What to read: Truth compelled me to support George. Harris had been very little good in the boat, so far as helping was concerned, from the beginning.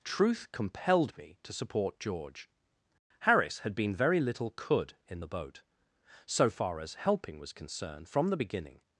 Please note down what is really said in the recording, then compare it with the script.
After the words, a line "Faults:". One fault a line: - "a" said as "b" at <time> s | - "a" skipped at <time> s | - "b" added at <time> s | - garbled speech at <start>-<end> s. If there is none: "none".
Truth compelled me to support George. Harris had been very little could in the boat, so far as helping was concerned, from the beginning.
Faults:
- "good" said as "could" at 4.5 s